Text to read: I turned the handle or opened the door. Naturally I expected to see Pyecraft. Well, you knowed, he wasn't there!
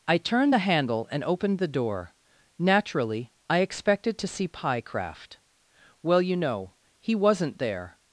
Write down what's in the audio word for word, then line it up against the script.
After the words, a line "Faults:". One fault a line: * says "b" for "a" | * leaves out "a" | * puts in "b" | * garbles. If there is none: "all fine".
I turned the handle and opened the door. Naturally I expected to see Pyecraft. Well, you know, he wasn't there!
Faults:
* says "and" for "or"
* says "know" for "knowed"